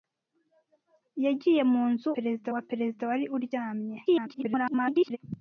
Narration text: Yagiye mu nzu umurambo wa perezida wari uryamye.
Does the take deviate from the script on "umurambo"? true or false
true